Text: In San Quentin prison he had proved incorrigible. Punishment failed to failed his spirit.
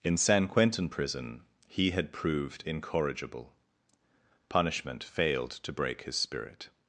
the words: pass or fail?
fail